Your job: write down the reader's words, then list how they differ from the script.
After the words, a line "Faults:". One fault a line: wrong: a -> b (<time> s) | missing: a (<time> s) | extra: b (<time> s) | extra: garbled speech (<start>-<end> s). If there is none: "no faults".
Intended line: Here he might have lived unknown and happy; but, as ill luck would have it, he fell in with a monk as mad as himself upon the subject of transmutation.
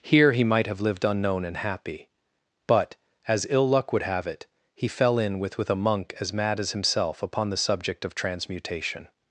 Here he might have lived unknown and happy; but, as ill luck would have it, he fell in with with a monk as mad as himself upon the subject of transmutation.
Faults:
extra: with (5.6 s)